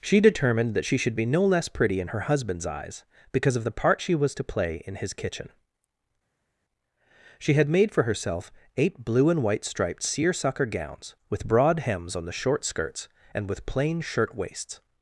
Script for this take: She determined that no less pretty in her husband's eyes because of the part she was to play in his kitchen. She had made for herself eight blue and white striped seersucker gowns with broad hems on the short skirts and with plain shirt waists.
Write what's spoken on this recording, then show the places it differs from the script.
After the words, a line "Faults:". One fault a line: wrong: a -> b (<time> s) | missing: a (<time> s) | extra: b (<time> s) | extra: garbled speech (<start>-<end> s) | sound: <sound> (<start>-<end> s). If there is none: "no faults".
She determined that she should be no less pretty in her husband's eyes because of the part she was to play in his kitchen. She had made for herself eight blue and white striped seersucker gowns with broad hems on the short skirts and with plain shirt waists.
Faults:
extra: she should be (0.8 s)